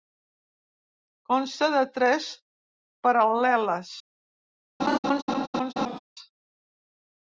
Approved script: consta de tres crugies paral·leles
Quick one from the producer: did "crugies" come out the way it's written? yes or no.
no